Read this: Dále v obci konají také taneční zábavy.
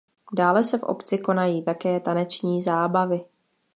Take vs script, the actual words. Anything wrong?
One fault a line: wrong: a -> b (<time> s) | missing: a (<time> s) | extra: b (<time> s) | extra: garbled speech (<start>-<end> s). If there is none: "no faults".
extra: se (0.6 s)